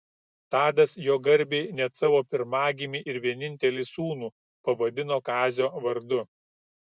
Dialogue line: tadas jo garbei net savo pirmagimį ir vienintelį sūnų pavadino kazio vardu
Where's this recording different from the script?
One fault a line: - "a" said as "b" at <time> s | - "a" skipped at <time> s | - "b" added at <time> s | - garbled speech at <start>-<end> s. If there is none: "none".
none